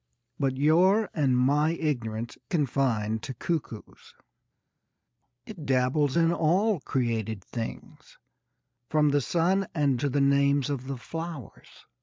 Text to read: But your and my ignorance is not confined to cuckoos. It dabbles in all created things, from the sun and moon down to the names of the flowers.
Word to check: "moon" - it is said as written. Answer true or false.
false